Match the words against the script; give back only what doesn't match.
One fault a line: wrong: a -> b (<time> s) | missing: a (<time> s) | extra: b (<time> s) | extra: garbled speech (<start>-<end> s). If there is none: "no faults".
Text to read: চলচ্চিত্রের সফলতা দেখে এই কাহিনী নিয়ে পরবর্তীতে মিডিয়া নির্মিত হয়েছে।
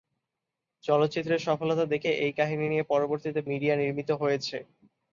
no faults